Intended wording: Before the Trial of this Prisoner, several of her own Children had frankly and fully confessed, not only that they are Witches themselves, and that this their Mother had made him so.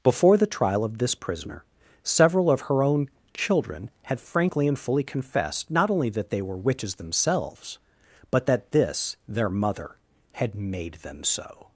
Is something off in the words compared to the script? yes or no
yes